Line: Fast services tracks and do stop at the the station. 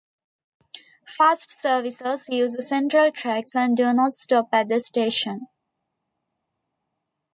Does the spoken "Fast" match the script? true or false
true